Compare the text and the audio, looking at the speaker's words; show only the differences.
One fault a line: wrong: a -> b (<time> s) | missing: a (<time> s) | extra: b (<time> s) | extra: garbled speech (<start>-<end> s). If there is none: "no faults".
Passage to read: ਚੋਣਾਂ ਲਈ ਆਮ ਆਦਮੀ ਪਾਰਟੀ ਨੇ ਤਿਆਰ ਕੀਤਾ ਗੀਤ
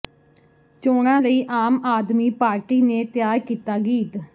no faults